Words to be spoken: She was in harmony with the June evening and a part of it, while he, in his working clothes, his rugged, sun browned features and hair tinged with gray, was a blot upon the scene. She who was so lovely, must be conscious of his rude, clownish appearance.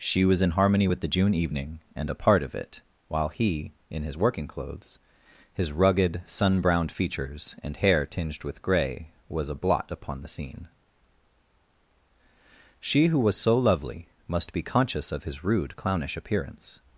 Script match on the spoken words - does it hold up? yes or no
yes